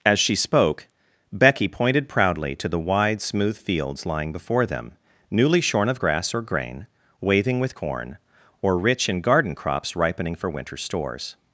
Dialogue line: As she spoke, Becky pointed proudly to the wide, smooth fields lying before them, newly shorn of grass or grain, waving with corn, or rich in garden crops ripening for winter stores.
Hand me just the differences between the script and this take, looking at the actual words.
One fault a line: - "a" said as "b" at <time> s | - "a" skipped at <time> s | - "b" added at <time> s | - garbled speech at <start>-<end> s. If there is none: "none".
none